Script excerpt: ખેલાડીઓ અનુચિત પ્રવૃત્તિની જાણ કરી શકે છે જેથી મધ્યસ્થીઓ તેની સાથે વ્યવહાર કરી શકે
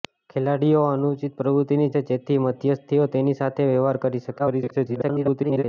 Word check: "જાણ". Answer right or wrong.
wrong